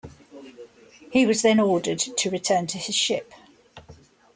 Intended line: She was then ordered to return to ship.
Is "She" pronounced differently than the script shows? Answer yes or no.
yes